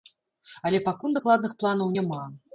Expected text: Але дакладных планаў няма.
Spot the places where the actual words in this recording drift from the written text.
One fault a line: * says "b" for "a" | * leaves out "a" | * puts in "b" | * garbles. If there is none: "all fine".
* puts in "пакуль"